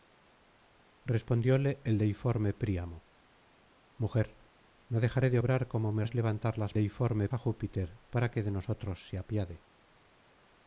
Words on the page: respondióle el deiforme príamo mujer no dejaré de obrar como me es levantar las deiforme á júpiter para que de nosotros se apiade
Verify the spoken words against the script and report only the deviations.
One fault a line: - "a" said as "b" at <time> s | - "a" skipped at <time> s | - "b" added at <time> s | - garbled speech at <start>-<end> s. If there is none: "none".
none